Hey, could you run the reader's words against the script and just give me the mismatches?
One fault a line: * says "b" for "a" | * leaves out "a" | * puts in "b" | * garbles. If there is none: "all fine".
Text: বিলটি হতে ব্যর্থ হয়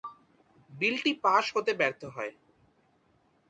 * puts in "পাস"